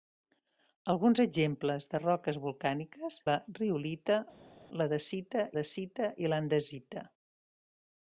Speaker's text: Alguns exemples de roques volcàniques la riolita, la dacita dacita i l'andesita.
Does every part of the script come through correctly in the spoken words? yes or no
yes